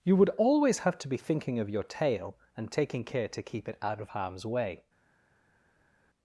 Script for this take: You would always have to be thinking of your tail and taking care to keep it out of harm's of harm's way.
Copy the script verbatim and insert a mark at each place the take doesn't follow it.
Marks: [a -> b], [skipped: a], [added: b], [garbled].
You would always have to be thinking of your tail and taking care to keep it out of harm's [skipped: of harm's] way.